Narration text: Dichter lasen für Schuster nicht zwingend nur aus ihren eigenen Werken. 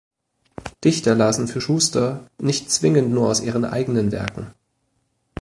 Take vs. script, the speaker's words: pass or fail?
pass